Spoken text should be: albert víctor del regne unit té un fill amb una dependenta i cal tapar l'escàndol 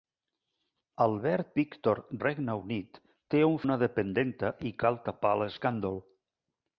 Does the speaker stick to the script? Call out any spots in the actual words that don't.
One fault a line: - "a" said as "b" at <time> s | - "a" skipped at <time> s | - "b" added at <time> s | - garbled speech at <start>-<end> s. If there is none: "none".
- "del" skipped at 2.0 s
- "fill amb" skipped at 3.6 s